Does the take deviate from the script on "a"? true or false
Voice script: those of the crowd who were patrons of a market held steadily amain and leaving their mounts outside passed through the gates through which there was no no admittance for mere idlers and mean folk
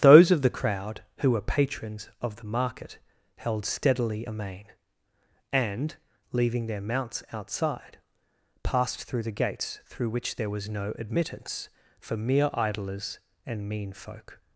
true